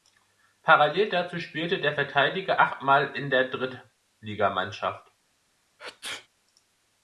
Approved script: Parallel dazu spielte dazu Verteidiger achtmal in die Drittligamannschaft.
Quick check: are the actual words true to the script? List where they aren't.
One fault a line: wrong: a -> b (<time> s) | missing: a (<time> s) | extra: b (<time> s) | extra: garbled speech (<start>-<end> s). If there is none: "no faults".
wrong: dazu -> der (1.8 s)
wrong: die -> der (3.3 s)